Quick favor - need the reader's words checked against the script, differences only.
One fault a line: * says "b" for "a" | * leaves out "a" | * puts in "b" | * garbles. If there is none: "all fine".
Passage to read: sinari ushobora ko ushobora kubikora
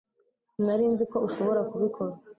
* says "nzi" for "ushobora"